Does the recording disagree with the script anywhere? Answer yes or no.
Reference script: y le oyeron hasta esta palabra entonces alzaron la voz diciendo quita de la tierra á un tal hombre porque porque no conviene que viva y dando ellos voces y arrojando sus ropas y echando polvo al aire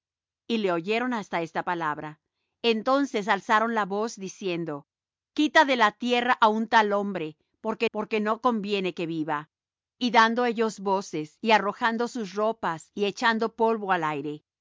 no